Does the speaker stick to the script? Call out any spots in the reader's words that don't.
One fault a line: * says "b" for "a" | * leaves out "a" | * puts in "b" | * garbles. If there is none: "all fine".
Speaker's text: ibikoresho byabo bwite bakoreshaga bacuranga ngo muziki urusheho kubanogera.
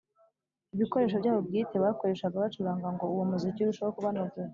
* puts in "uwo"